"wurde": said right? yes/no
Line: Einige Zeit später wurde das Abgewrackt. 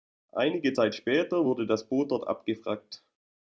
yes